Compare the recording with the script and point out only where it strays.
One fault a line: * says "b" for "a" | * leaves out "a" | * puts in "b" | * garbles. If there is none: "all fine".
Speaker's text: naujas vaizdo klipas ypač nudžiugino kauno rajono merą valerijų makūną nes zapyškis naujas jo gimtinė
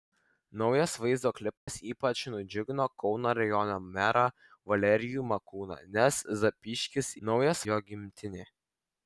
all fine